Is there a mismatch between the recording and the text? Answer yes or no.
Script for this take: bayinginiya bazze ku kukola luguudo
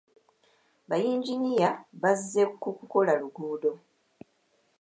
no